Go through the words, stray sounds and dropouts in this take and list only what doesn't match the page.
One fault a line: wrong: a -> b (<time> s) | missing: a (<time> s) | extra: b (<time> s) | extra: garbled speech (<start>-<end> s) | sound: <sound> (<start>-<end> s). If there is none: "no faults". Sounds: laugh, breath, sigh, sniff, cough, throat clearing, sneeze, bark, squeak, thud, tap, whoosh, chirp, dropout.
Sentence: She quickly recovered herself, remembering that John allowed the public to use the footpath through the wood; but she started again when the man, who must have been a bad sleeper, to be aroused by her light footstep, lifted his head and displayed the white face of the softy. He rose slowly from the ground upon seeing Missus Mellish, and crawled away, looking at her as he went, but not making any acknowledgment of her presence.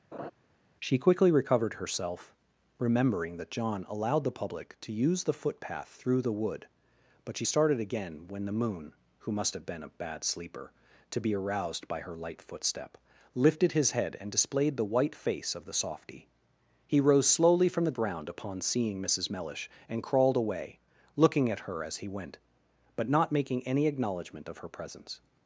sound: laugh (0.1-0.3 s)
wrong: man -> moon (8.5 s)